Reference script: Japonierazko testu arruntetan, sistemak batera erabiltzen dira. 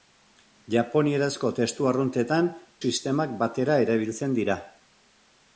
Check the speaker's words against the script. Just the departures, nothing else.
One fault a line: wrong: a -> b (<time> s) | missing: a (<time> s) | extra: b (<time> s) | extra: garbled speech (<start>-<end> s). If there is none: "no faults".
no faults